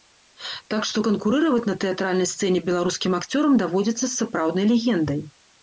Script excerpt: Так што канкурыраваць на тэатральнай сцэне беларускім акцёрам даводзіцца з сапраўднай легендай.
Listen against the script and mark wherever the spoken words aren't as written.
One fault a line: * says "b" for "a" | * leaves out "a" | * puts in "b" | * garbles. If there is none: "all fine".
all fine